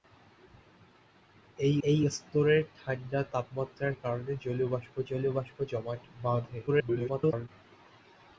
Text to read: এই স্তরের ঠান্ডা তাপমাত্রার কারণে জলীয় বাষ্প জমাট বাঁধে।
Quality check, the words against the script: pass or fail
fail